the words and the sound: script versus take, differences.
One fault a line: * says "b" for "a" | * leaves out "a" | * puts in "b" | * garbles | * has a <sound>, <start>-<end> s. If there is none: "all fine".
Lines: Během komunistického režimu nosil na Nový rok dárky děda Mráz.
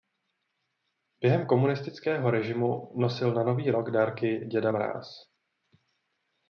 all fine